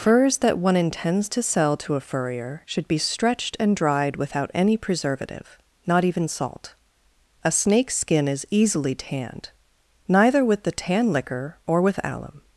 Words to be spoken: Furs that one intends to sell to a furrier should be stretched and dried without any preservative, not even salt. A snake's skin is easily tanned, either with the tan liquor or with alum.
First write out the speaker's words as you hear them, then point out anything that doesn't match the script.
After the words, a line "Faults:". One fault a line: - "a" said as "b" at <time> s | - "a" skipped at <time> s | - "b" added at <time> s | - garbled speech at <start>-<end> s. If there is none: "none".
Furs that one intends to sell to a furrier should be stretched and dried without any preservative, not even salt. A snake's skin is easily tanned, neither with the tan liquor or with alum.
Faults:
- "either" said as "neither" at 10.1 s